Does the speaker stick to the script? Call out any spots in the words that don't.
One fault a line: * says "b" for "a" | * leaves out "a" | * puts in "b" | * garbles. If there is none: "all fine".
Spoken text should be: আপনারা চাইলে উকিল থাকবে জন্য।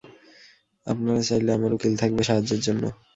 * puts in "আমার"
* puts in "সাহায্যের"